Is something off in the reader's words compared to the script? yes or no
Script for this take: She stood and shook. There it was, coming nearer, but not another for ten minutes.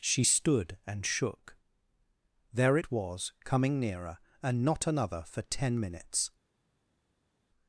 yes